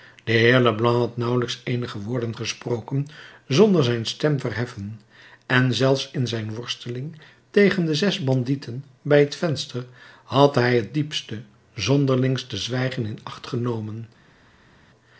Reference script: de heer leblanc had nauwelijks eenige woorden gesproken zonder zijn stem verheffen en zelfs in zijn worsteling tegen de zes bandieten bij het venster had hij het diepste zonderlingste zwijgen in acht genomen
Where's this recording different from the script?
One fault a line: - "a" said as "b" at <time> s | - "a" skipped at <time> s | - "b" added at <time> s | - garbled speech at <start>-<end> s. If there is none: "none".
none